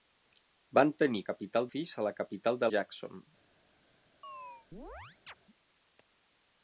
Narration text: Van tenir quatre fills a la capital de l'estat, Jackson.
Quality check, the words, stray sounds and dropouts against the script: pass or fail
fail